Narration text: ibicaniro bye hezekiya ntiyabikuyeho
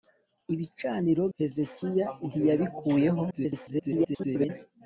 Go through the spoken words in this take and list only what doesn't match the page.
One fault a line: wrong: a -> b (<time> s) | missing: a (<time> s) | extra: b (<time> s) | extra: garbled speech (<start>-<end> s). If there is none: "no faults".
missing: bye (1.2 s)
extra: garbled speech (3.3-4.5 s)